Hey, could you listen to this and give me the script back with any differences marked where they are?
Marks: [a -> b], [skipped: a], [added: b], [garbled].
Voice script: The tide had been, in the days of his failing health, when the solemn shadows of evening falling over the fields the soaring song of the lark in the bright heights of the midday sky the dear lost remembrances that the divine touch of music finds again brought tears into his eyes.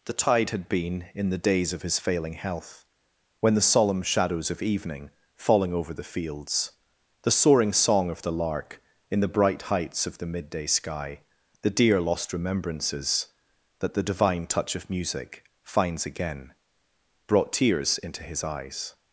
The tide had been, in the days of his failing health, when the solemn shadows of evening falling over the fields the soaring song of the lark in the bright heights of the midday sky the dear lost remembrances that the divine touch of music finds again brought tears into his eyes.